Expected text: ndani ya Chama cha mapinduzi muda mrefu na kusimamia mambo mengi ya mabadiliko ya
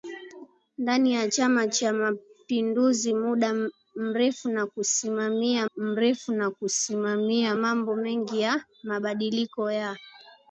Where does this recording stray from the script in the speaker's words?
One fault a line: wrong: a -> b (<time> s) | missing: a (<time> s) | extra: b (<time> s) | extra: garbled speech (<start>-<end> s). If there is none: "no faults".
extra: mrefu na kusimamia (5.8 s)